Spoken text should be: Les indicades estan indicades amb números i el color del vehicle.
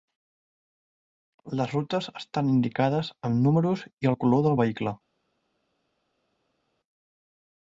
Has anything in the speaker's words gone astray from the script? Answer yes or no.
yes